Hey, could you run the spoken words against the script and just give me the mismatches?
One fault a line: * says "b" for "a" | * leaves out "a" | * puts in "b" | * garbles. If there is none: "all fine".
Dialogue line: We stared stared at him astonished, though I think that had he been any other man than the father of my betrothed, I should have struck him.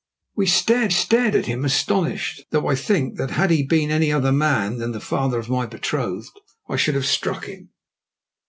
all fine